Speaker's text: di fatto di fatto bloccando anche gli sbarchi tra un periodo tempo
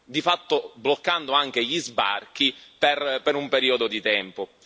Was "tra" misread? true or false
true